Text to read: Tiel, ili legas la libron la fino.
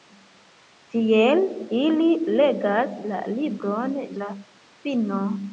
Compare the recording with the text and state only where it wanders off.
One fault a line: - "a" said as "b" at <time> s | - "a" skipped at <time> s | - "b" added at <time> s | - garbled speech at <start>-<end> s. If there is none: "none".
none